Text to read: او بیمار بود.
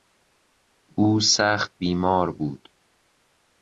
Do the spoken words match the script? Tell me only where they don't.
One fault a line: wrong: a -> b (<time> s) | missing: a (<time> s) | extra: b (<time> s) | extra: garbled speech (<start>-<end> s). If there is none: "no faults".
extra: سخت (1.2 s)